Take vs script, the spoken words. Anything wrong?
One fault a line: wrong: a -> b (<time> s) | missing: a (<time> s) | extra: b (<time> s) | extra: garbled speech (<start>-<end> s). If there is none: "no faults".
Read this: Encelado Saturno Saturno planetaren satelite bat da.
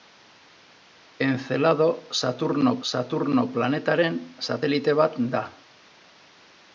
no faults